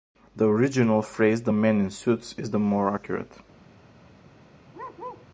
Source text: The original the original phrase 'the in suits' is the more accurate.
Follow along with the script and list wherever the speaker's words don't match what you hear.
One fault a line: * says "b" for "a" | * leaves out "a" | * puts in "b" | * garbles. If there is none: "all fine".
* leaves out "the original"
* puts in "men"